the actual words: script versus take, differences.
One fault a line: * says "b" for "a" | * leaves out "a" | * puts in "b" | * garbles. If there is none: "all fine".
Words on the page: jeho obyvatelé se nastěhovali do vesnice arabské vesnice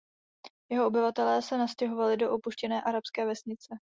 * says "opuštěné" for "vesnice"